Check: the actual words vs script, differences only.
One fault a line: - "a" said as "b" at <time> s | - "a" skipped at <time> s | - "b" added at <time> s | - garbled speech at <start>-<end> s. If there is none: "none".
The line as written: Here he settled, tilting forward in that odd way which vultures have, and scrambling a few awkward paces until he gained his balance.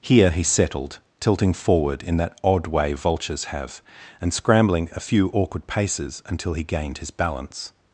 - "which" skipped at 2.9 s